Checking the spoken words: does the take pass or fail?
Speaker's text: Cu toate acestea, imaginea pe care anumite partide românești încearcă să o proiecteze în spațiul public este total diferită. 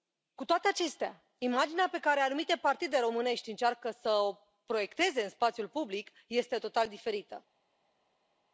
pass